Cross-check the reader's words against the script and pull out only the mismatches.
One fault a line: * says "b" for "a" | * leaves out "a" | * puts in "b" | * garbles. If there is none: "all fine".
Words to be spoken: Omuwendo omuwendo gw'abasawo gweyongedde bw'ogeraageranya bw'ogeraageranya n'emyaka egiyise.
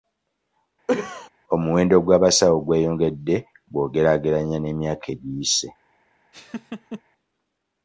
* leaves out "omuwendo"
* leaves out "bw'ogeraageranya"